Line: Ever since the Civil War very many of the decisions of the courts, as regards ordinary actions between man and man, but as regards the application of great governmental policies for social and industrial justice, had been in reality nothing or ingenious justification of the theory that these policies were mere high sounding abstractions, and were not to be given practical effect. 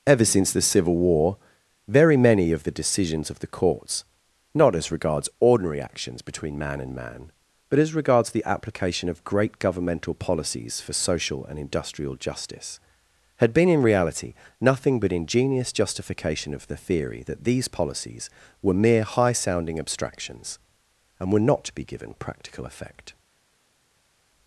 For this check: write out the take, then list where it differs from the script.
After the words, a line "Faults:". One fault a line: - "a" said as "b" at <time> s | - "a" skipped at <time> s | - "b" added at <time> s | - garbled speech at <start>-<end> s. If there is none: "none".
Ever since the Civil War very many of the decisions of the courts, not as regards ordinary actions between man and man, but as regards the application of great governmental policies for social and industrial justice, had been in reality nothing but ingenious justification of the theory that these policies were mere high sounding abstractions, and were not to be given practical effect.
Faults:
- "not" added at 4.5 s
- "or" said as "but" at 15.0 s